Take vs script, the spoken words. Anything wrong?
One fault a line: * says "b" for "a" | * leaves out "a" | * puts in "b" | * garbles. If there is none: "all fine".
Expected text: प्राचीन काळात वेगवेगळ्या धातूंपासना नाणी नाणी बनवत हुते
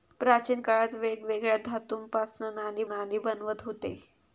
all fine